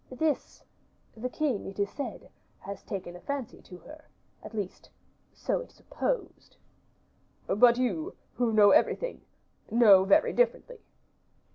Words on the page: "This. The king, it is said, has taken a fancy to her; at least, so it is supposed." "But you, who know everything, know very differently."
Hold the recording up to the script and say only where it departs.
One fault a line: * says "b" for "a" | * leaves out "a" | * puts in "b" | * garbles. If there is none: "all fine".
* leaves out "is"